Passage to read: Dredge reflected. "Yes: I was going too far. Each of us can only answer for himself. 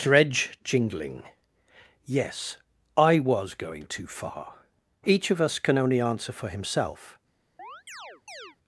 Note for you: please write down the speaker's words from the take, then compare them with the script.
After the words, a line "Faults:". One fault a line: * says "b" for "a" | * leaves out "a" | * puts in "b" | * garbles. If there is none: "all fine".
Dredge jingling. "Yes: I was going too far. Each of us can only answer for himself.
Faults:
* says "jingling" for "reflected"